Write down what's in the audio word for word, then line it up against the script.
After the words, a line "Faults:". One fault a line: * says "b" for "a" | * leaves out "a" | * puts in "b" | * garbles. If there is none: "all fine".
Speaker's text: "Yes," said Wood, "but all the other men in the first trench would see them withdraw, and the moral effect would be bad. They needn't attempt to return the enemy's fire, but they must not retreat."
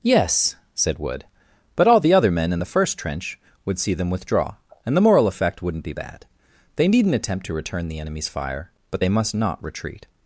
"Yes," said Wood, "but all the other men in the first trench would see them withdraw, and the moral effect wouldn't be bad. They needn't attempt to return the enemy's fire, but they must not retreat."
Faults:
* says "wouldn't" for "would"